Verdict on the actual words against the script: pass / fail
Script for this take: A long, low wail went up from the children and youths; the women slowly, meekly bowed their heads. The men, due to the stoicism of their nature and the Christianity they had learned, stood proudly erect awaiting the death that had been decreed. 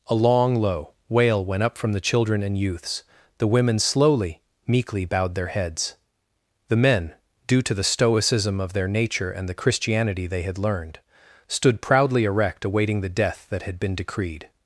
pass